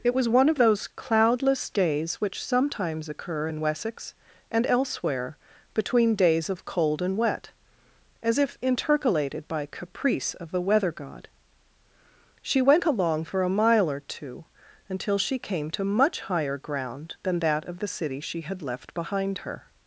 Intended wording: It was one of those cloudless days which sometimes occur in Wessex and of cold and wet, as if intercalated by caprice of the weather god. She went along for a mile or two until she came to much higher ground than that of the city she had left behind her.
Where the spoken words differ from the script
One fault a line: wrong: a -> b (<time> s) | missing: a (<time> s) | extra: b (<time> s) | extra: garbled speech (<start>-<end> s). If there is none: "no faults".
extra: elsewhere between days (4.7 s)